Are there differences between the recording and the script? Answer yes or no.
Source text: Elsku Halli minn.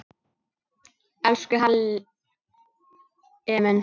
no